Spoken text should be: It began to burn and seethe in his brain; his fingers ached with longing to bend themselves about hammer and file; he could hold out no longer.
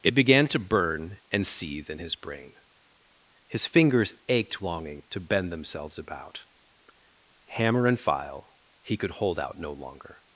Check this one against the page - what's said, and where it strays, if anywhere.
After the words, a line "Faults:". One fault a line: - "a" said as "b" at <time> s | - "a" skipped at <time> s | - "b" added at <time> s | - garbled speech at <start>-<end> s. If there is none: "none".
It began to burn and seethe in his brain; his fingers ached longing to bend themselves about hammer and file; he could hold out no longer.
Faults:
- "with" skipped at 4.6 s